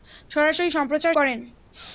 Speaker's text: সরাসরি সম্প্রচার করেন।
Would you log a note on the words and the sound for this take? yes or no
no